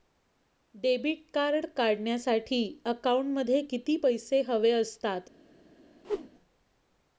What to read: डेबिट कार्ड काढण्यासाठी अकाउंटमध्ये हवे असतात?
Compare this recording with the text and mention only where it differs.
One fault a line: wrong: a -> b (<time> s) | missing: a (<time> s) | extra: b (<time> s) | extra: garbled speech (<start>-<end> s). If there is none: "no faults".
extra: किती पैसे (3.6 s)